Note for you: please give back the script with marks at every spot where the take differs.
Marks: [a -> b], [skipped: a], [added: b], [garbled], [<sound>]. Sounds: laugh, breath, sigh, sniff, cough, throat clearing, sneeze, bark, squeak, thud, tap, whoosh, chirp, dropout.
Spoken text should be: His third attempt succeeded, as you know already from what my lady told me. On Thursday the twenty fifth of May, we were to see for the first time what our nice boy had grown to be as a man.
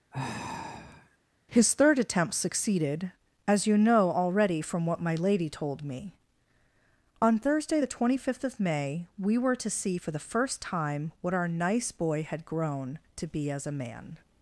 [sigh] His third attempt succeeded, as you know already from what my lady told me. On Thursday the twenty fifth of May, we were to see for the first time what our nice boy had grown to be as a man.